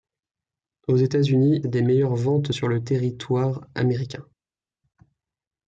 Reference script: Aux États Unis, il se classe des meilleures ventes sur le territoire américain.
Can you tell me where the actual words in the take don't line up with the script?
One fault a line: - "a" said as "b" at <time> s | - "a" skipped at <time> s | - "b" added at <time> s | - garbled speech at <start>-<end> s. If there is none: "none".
- "il se classe" skipped at 1.6 s